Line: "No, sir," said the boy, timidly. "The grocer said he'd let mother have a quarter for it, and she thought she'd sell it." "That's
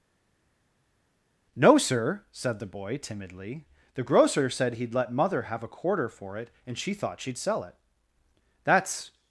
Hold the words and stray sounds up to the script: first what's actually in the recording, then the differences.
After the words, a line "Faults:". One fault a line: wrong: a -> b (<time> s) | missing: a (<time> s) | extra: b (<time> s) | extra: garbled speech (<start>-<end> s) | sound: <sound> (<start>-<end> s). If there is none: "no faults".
"No, sir," said the boy, timidly. "The grocer said he'd let mother have a quarter for it, and she thought she'd sell it." "That's
Faults:
no faults